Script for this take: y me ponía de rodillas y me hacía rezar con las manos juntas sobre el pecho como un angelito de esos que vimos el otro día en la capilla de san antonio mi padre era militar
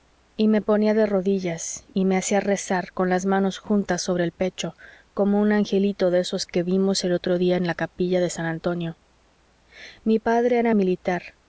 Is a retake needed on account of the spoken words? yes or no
no